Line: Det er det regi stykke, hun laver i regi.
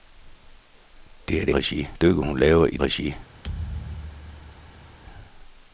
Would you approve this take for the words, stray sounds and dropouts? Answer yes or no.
no